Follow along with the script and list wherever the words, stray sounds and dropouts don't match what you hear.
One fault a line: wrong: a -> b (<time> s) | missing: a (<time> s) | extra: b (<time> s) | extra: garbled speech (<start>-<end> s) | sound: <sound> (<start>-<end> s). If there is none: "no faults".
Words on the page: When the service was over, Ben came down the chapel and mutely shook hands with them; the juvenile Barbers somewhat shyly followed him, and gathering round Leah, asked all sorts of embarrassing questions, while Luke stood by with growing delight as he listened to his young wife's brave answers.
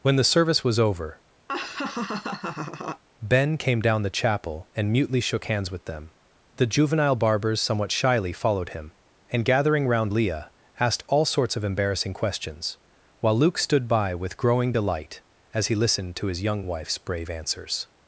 sound: laugh (1.5-3.0 s)